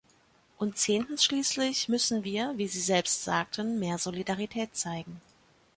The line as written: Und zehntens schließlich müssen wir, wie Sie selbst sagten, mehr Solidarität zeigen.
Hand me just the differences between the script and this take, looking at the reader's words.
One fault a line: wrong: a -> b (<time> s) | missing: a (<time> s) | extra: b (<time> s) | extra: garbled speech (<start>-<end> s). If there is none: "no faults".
no faults